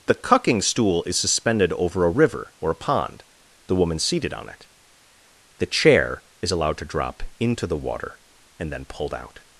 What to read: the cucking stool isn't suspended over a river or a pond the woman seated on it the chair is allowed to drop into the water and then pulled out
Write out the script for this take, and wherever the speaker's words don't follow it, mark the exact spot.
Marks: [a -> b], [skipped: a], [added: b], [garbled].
the cucking stool [isn't -> is] suspended over a river or a pond the woman seated on it the chair is allowed to drop into the water and then pulled out